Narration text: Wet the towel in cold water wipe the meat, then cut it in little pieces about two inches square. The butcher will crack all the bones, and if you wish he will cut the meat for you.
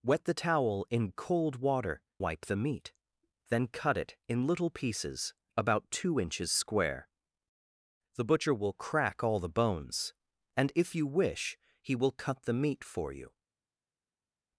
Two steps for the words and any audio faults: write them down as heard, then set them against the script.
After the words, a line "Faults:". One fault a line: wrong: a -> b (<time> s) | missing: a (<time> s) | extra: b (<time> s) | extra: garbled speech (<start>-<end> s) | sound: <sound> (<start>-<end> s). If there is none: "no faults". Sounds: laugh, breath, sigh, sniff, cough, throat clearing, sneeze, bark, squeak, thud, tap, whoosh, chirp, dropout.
Wet the towel in cold water wipe the meat, then cut it in little pieces about two inches square. The butcher will crack all the bones, and if you wish he will cut the meat for you.
Faults:
no faults